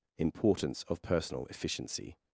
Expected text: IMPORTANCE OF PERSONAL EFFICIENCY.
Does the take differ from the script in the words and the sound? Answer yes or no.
no